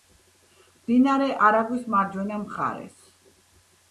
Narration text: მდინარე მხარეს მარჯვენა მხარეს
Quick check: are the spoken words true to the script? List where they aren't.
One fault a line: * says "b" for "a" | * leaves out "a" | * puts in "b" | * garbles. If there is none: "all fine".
* says "არაგვის" for "მხარეს"